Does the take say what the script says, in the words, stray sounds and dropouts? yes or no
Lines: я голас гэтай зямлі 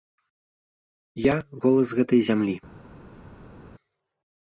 yes